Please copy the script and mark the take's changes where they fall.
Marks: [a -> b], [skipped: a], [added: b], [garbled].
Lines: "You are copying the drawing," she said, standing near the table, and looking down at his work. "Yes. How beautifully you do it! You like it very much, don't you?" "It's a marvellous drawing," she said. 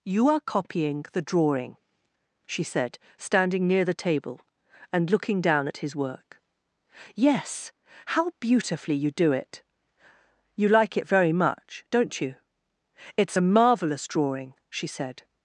"You are copying the drawing," she said, standing near the table, and looking down at his work. "Yes. How beautifully you do it! You like it very much, don't you?" "It's a marvellous drawing," she said.